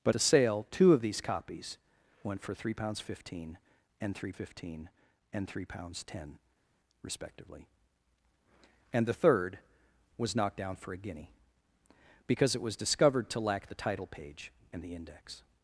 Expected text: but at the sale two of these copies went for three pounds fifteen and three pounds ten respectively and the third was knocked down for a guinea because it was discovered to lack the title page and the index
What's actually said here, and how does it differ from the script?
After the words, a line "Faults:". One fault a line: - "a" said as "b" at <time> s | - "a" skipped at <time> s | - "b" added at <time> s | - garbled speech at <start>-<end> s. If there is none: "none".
but the sale two of these copies went for three pounds fifteen and three fifteen and three pounds ten respectively and the third was knocked down for a guinea because it was discovered to lack the title page and the index
Faults:
- "at" skipped at 0.1 s
- "fifteen and three" added at 4.3 s